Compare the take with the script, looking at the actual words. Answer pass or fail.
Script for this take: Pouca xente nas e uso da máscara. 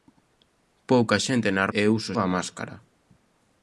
pass